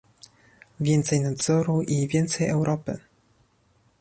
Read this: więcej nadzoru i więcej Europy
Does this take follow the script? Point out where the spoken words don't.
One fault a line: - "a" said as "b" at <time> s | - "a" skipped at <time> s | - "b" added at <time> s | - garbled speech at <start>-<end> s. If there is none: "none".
none